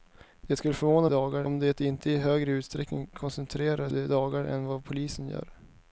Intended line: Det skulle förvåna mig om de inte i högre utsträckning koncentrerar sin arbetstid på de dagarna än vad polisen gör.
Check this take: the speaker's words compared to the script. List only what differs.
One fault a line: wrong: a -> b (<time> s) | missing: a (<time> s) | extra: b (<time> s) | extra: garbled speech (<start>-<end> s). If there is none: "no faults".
wrong: mig -> dagarna (1.1 s)
missing: sin arbetstid på (3.9 s)